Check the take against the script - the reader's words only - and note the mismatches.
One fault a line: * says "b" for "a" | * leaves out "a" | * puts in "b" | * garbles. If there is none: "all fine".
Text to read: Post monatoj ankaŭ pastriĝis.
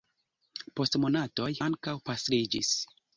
all fine